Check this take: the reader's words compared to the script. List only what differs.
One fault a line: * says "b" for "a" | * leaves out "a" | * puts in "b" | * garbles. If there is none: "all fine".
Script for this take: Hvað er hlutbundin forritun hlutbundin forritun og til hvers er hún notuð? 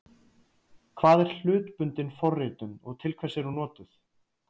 * leaves out "hlutbundin forritun"